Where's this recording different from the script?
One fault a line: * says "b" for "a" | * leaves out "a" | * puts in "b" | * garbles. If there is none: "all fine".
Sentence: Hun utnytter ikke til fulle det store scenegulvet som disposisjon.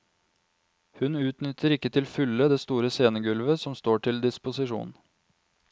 * puts in "står til"